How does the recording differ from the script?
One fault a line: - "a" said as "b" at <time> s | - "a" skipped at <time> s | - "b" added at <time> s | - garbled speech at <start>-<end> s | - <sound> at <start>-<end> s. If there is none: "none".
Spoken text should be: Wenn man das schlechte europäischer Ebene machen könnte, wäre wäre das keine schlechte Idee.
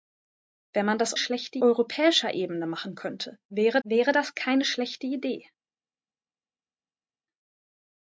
none